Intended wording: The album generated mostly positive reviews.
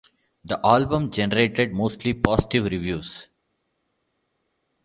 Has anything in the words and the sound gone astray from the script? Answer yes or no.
no